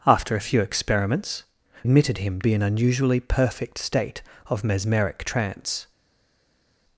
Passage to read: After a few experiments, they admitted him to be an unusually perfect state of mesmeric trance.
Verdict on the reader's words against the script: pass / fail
fail